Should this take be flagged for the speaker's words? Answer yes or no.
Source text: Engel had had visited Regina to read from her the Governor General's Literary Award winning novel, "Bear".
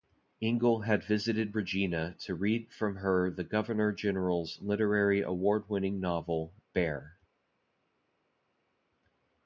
yes